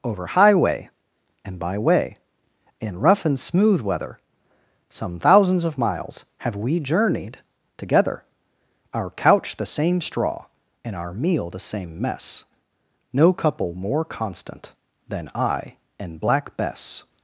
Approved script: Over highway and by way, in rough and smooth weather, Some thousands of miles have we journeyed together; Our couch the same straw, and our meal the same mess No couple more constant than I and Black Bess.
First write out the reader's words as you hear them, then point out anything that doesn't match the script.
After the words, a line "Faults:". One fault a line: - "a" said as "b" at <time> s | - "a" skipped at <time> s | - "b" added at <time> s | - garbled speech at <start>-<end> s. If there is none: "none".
Over highway and by way, in rough and smooth weather, Some thousands of miles have we journeyed together; Our couch the same straw, and our meal the same mess No couple more constant than I and Black Bess.
Faults:
none